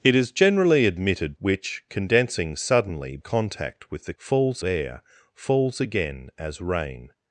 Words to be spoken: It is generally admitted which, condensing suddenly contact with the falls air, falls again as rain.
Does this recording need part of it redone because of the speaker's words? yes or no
no